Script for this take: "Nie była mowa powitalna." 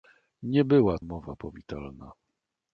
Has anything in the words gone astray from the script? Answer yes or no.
no